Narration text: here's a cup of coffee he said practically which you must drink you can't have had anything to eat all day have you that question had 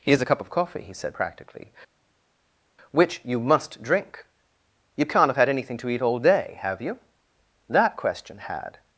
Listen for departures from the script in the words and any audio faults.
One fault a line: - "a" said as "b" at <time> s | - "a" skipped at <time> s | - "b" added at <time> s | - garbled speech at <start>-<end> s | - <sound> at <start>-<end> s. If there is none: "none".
none